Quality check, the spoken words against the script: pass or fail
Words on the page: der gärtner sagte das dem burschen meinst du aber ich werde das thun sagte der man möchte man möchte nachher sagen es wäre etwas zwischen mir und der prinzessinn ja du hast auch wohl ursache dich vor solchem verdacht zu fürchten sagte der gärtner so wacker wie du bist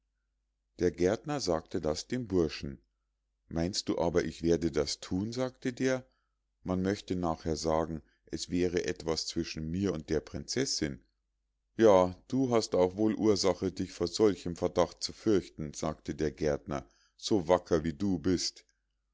fail